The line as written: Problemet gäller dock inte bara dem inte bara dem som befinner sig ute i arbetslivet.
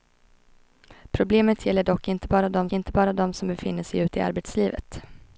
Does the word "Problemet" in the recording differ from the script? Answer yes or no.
no